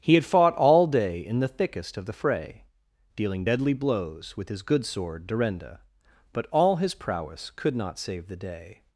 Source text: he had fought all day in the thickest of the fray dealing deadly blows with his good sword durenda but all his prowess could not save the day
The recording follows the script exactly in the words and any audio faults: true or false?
true